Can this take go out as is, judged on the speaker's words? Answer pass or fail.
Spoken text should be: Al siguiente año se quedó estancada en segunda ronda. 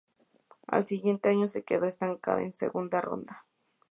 pass